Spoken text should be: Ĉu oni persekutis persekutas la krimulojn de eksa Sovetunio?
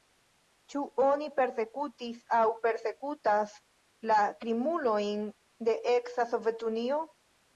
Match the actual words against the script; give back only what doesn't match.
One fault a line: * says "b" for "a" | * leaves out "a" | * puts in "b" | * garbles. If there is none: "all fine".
* puts in "aŭ"